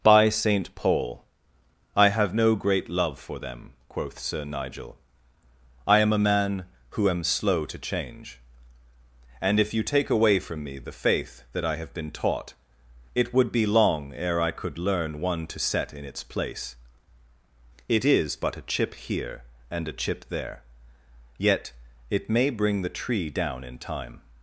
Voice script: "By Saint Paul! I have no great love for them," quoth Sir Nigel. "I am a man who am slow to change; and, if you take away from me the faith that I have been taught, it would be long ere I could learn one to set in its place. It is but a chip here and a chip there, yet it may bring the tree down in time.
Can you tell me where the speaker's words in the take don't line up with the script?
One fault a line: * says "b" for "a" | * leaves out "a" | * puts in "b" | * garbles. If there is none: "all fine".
all fine